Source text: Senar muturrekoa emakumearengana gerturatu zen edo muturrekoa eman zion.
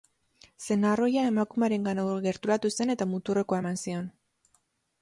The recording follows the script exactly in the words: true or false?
false